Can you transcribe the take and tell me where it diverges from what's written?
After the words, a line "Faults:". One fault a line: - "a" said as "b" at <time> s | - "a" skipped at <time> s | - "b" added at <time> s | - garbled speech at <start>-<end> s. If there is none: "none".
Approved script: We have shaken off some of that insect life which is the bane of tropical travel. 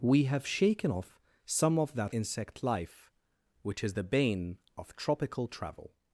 We have shaken off some of that insect life which is the bane of tropical travel.
Faults:
none